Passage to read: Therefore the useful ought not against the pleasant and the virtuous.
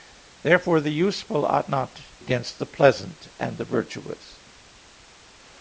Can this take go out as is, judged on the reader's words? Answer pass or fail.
pass